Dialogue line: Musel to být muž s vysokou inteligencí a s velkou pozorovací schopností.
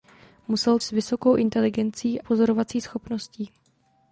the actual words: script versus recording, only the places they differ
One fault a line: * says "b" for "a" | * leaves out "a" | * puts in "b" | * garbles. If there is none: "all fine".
* leaves out "to být muž"
* leaves out "a s velkou"